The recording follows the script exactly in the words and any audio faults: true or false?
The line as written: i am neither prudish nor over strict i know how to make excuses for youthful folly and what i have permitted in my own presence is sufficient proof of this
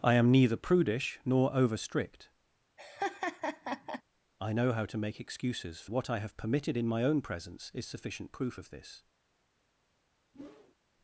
false